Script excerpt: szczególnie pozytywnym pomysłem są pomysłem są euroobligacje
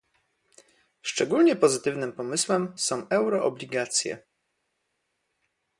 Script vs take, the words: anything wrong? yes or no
yes